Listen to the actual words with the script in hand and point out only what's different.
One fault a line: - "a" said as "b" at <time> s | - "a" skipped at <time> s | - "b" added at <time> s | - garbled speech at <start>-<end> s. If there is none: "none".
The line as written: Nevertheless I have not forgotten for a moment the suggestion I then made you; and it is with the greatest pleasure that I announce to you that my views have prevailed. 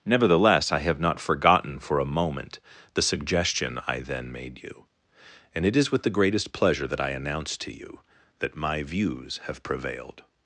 none